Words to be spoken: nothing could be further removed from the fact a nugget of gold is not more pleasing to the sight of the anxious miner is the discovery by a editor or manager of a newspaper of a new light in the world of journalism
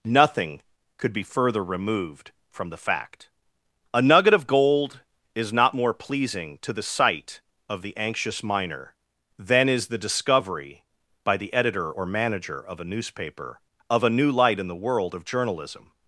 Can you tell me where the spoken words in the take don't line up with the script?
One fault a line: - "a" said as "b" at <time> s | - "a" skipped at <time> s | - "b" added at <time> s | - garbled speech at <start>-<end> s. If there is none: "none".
- "than" added at 9.4 s
- "a" said as "the" at 11.4 s